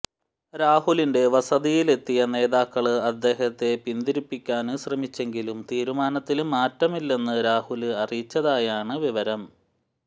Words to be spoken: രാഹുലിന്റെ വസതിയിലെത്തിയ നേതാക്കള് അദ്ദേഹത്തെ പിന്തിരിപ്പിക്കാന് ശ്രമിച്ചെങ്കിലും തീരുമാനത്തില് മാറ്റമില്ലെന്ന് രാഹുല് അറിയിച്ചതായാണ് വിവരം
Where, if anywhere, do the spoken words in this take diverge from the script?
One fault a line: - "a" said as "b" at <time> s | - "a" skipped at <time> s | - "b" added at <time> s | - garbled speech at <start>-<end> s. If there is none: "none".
none